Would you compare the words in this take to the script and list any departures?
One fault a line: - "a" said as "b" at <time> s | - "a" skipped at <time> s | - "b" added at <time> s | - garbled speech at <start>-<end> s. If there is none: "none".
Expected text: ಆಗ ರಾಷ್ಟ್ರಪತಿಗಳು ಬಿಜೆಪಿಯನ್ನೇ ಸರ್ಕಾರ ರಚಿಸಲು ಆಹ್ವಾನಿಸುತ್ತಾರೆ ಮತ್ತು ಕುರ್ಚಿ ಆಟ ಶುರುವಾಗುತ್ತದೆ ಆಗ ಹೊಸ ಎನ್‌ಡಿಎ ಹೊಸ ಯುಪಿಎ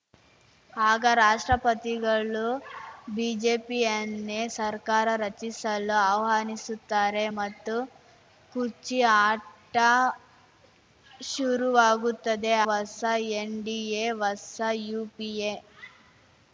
- "ಆಗ" skipped at 12.5 s